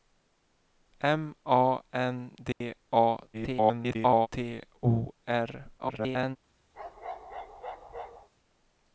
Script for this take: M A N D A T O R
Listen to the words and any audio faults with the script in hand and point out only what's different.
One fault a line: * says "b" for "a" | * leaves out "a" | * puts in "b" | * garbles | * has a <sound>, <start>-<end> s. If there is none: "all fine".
* has a dropout, 2.5-2.6 s
* garbles
* garbles
* has a bark, 6.7-8.3 s